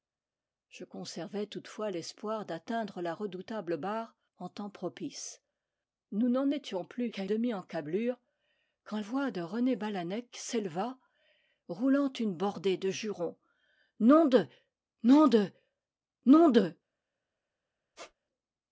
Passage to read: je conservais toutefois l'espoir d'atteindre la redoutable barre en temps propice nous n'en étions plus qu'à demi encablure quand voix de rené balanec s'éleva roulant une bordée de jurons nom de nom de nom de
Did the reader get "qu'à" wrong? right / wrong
right